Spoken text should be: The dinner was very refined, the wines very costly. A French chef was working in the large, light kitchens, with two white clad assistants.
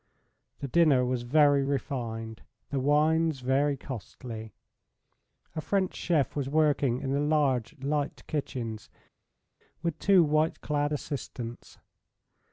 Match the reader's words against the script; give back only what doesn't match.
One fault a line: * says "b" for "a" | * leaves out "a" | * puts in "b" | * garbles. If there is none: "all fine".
all fine